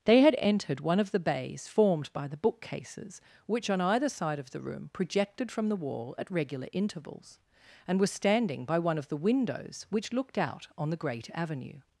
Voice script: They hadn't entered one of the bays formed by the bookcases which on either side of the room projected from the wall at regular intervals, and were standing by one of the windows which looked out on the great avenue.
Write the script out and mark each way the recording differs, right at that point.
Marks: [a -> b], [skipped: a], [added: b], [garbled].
They [hadn't -> had] entered one of the bays formed by the bookcases which on either side of the room projected from the wall at regular intervals, and were standing by one of the windows which looked out on the great avenue.